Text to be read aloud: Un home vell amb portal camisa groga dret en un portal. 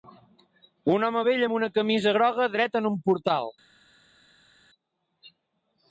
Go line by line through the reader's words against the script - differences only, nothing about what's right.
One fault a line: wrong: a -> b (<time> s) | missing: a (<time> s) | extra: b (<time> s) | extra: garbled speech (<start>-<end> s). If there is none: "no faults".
wrong: portal -> una (1.6 s)